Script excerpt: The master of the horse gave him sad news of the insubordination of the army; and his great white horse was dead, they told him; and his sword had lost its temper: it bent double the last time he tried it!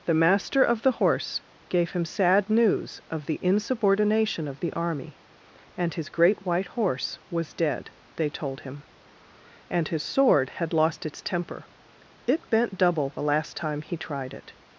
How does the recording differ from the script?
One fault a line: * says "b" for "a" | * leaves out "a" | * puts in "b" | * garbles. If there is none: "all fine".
all fine